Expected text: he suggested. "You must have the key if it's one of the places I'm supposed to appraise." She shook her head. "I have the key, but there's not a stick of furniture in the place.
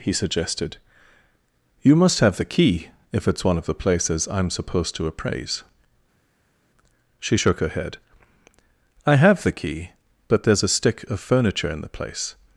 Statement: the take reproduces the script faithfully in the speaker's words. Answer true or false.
false